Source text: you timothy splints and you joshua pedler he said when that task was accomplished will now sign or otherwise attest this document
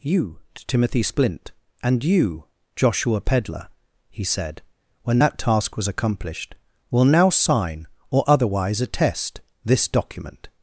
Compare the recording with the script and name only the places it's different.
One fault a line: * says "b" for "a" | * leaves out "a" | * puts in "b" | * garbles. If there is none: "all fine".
* says "splint" for "splints"